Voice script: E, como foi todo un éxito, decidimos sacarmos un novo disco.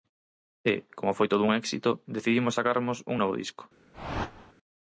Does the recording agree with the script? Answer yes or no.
yes